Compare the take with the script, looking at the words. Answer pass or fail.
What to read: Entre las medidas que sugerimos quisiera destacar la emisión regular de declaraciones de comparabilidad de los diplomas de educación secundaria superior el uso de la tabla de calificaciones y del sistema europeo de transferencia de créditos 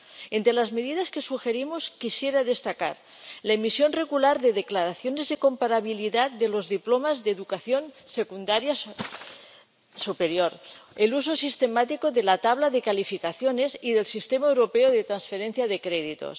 fail